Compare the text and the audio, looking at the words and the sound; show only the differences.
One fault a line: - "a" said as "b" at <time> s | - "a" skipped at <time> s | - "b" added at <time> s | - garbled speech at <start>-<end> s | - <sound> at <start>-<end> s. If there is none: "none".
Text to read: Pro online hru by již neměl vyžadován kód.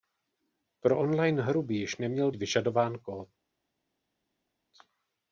none